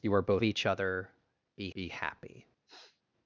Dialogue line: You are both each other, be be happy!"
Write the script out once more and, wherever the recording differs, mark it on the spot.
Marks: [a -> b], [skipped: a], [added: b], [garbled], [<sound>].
You are both each other, be be happy!" [sniff]